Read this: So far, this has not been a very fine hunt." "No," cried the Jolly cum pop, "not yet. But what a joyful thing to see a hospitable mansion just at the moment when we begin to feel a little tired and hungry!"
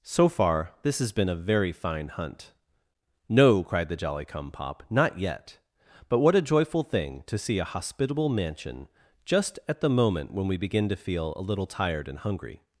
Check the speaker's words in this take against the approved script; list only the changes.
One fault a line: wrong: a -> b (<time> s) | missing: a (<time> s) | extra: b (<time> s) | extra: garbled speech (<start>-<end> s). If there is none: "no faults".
missing: not (1.1 s)